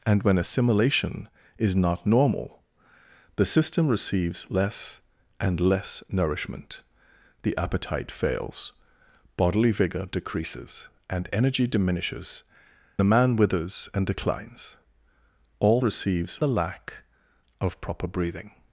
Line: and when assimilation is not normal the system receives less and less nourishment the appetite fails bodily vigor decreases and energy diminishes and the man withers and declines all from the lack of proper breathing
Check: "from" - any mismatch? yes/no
yes